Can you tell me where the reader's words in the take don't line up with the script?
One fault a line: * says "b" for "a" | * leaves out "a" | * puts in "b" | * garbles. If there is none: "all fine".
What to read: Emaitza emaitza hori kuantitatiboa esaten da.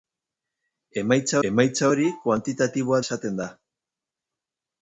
all fine